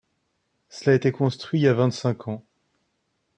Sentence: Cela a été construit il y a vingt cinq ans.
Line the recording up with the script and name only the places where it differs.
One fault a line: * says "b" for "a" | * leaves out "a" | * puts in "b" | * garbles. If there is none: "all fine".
all fine